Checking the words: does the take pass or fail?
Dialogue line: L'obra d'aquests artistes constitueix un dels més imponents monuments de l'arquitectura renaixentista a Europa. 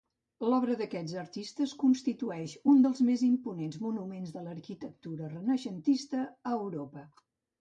pass